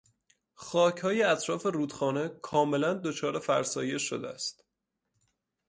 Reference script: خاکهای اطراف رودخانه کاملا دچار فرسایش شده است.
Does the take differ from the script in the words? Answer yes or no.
no